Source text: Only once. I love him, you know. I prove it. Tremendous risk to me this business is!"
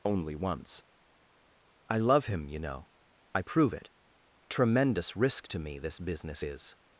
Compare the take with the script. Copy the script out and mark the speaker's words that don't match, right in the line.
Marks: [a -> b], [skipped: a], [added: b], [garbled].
Only once. I love him, you know. I prove it. Tremendous risk to me this business is!"